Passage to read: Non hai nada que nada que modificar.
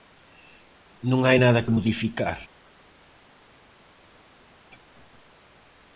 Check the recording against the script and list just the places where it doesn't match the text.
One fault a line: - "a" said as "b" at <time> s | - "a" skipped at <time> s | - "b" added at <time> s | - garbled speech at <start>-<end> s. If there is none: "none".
- "nada que" skipped at 1.7 s